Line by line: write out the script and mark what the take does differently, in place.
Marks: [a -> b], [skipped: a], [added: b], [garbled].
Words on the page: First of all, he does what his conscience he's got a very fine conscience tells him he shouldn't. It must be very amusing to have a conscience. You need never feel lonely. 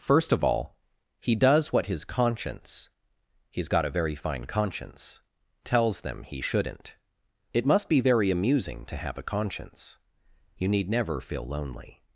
First of all, he does what his conscience he's got a very fine conscience tells [him -> them] he shouldn't. It must be very amusing to have a conscience. You need never feel lonely.